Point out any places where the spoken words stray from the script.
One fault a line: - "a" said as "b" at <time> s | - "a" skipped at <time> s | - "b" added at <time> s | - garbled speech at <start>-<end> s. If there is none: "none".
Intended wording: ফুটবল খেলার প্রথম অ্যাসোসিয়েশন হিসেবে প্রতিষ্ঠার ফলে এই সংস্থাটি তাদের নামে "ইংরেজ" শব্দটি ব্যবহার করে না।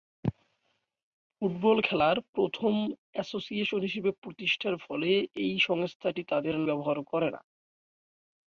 - "নামে ইংরেজ শব্দটি" skipped at 6.6 s